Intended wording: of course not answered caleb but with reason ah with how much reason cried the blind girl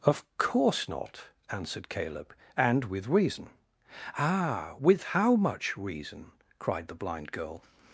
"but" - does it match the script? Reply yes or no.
no